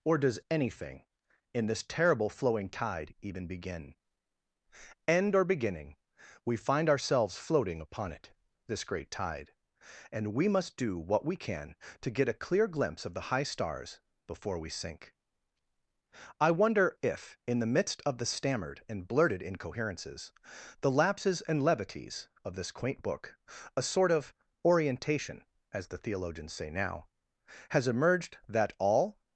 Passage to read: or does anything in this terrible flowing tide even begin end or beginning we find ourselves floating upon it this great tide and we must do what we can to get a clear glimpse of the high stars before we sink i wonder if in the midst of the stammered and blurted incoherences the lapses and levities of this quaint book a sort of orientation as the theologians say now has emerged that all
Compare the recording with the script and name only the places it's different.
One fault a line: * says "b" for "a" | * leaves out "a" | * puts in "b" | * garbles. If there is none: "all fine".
all fine